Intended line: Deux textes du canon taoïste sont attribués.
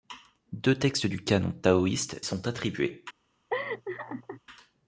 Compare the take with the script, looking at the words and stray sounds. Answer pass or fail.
fail